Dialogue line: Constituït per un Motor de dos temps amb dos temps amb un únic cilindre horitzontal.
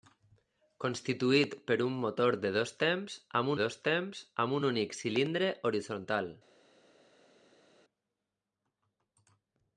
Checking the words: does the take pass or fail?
pass